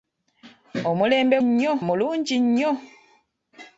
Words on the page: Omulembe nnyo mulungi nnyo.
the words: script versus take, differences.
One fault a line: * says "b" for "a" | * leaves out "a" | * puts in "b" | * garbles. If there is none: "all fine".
all fine